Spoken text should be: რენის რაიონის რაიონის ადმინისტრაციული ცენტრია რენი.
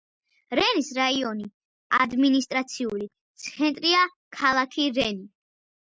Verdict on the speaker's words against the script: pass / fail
fail